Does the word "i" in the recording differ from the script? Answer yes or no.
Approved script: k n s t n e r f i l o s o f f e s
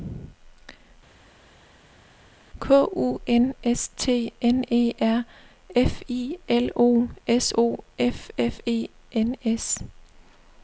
no